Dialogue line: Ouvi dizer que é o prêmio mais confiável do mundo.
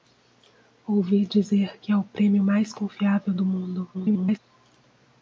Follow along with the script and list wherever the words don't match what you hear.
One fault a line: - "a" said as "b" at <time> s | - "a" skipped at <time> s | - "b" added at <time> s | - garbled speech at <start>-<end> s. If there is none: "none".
- garbled speech at 3.9-4.4 s